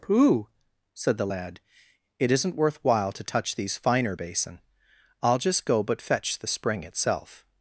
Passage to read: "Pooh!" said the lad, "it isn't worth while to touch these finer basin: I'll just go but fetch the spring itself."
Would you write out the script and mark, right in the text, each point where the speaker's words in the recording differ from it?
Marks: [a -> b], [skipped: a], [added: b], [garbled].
"Pooh!" said the lad, "it isn't worth while to touch these finer basin: I'll just go but fetch the spring itself."